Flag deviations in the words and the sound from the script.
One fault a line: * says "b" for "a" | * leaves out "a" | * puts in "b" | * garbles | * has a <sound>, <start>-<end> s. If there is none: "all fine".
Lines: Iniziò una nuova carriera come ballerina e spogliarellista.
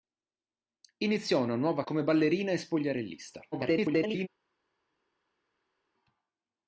* leaves out "carriera"
* garbles